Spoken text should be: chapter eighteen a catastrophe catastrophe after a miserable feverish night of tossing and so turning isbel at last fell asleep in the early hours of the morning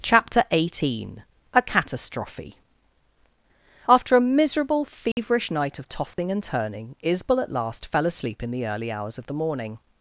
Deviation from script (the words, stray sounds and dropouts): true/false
true